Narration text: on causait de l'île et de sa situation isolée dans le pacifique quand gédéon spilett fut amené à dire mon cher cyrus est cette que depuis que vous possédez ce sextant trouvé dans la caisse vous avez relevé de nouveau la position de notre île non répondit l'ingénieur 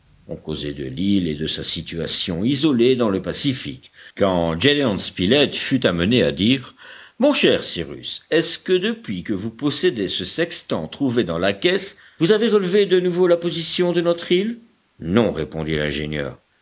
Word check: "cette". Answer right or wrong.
wrong